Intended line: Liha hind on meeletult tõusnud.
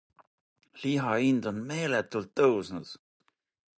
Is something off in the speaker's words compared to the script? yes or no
no